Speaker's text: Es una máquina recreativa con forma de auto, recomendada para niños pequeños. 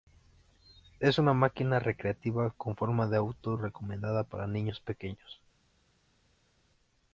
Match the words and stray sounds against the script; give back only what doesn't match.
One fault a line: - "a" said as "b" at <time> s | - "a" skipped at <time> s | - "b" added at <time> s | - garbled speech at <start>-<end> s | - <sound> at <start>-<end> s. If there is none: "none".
none